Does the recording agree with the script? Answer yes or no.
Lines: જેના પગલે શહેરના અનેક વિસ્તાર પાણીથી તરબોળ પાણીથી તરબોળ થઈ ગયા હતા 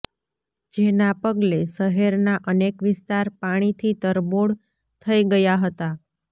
no